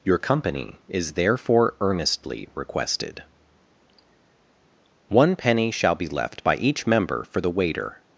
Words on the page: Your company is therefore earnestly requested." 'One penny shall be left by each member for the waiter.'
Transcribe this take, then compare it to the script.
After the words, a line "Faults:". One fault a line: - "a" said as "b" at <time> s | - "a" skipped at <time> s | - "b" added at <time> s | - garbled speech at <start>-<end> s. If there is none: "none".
Your company is therefore earnestly requested." 'One penny shall be left by each member for the waiter.'
Faults:
none